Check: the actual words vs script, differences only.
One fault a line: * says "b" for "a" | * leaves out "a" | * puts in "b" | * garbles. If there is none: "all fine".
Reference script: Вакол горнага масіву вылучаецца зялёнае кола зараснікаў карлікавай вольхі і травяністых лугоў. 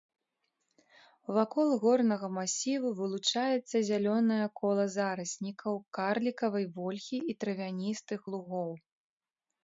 all fine